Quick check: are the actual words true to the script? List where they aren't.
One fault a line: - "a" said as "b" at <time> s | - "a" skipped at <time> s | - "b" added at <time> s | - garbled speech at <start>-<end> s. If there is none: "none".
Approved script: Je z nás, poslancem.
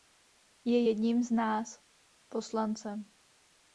- "jedním" added at 0.9 s